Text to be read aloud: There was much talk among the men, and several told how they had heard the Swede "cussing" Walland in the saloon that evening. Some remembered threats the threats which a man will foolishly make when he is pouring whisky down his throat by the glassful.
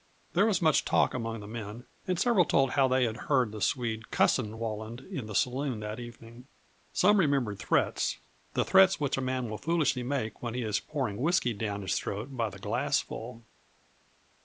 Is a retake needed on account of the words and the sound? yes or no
no